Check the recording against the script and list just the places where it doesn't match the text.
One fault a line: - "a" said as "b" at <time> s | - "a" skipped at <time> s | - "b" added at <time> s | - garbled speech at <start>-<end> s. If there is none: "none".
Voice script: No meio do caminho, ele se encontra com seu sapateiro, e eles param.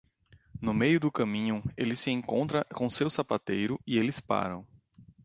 none